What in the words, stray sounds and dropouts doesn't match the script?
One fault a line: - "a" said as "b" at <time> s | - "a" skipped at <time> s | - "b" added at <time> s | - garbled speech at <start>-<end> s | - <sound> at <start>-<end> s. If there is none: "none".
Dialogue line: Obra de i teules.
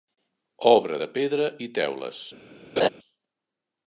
- "pedra" added at 1.2 s
- laugh at 2.8-2.9 s